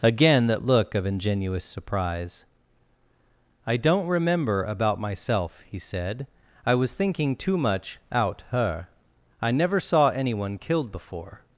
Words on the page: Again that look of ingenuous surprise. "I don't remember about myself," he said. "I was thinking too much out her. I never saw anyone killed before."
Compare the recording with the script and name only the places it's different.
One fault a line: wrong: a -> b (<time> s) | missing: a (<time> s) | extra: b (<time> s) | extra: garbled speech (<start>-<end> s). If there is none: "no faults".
no faults